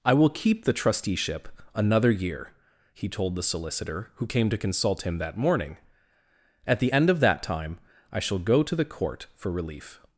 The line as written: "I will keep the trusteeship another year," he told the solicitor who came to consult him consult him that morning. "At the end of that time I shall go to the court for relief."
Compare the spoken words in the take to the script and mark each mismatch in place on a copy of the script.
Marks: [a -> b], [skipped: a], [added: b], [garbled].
"I will keep the trusteeship another year," he told the solicitor who came to consult him [skipped: consult him] that morning. "At the end of that time I shall go to the court for relief."